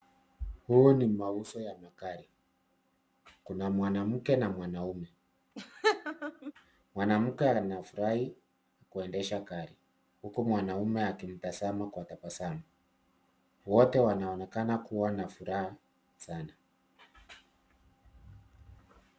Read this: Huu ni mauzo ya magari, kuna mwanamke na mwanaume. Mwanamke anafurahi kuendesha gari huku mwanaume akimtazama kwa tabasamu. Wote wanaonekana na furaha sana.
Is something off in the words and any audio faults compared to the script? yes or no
yes